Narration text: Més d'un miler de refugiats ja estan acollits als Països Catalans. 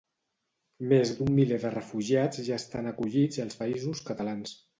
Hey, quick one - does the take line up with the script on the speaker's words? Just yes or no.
yes